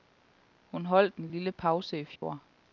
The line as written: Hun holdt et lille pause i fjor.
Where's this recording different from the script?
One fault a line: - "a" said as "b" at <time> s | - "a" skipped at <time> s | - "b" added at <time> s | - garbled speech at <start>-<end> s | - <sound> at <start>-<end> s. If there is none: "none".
- "et" said as "en" at 1.2 s
- dropout at 2.2-2.2 s